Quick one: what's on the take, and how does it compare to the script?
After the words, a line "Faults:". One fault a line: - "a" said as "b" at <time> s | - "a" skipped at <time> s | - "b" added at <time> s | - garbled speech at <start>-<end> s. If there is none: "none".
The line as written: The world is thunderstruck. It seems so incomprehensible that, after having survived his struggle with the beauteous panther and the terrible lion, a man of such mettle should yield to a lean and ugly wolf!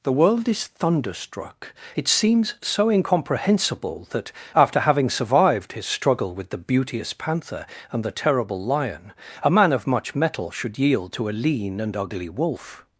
The world is thunderstruck. It seems so incomprehensible that, after having survived his struggle with the beauteous panther and the terrible lion, a man of much mettle should yield to a lean and ugly wolf!
Faults:
- "such" said as "much" at 9.9 s